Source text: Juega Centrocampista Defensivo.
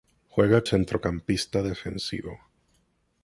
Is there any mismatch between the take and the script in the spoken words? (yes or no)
no